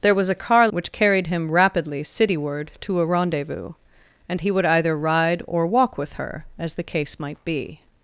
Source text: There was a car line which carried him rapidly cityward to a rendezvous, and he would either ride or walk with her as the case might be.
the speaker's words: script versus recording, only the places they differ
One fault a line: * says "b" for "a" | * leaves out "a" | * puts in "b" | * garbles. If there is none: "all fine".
* leaves out "line"